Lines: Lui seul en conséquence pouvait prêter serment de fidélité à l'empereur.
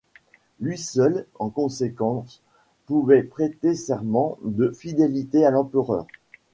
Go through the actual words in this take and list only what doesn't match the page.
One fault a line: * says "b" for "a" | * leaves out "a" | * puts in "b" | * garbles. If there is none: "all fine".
all fine